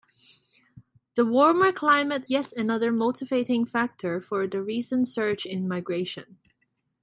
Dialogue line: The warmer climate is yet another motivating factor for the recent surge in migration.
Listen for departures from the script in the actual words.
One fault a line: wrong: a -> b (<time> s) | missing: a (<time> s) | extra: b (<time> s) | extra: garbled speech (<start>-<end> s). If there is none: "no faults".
missing: is (2.2 s)